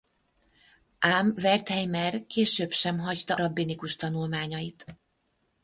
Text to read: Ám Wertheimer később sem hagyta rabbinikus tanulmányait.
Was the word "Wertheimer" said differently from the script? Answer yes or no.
no